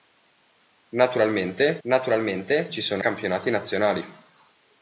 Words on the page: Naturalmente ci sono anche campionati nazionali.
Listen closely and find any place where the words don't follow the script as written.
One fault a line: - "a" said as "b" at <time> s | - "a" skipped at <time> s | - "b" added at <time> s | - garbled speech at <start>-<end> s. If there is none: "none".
- "naturalmente" added at 1.9 s
- "anche" skipped at 3.0 s